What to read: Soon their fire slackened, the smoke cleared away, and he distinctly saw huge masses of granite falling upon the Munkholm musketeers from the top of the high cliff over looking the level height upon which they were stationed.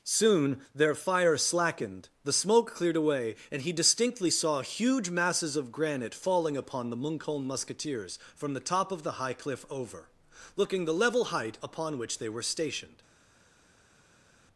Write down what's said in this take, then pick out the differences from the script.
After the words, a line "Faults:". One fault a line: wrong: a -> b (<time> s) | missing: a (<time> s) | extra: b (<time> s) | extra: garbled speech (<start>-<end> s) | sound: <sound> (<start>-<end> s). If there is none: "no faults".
Soon their fire slackened, the smoke cleared away, and he distinctly saw huge masses of granite falling upon the Munkholm musketeers from the top of the high cliff over looking the level height upon which they were stationed.
Faults:
no faults